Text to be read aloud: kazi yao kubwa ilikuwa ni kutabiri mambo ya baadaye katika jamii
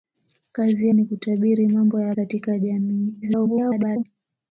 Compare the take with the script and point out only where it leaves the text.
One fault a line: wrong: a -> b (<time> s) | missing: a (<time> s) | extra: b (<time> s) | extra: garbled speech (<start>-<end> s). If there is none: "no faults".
missing: yao kubwa ilikuwa (0.9 s)
missing: baadaye (2.1 s)
extra: garbled speech (3.2-4.0 s)